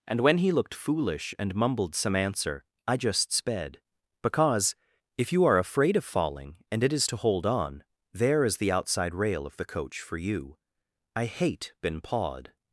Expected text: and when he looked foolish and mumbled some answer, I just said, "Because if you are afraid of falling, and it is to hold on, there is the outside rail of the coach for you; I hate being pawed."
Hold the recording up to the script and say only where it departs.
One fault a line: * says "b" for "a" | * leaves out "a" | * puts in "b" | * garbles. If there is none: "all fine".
* says "sped" for "said"
* says "been" for "being"